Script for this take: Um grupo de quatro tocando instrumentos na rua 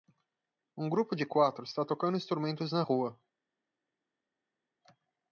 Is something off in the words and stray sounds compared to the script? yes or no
yes